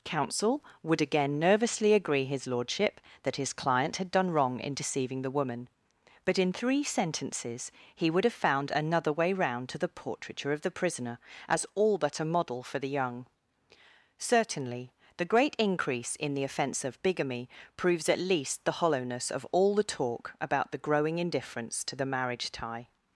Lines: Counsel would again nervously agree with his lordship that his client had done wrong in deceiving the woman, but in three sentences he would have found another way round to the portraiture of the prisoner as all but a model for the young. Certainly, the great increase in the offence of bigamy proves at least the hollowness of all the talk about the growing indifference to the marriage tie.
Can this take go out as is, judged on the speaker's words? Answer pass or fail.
fail